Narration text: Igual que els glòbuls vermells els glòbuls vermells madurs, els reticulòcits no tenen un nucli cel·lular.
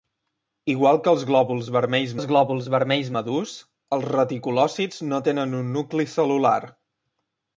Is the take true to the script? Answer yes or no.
yes